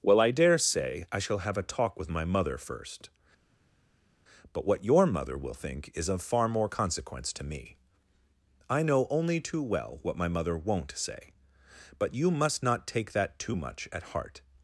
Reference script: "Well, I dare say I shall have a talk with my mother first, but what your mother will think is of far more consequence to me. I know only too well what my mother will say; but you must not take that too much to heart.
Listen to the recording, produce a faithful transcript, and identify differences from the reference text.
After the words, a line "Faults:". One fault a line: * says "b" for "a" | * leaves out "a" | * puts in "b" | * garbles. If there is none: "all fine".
"Well, I dare say I shall have a talk with my mother first, but what your mother will think is of far more consequence to me. I know only too well what my mother won't say; but you must not take that too much at heart.
Faults:
* says "won't" for "will"
* says "at" for "to"